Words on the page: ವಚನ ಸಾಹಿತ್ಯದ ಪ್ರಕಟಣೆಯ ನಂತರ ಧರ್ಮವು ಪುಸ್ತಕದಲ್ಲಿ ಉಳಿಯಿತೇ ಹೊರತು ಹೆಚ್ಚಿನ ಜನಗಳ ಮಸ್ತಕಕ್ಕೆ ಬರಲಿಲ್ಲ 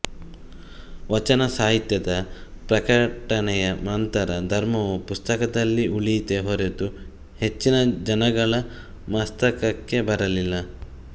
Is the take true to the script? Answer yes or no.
yes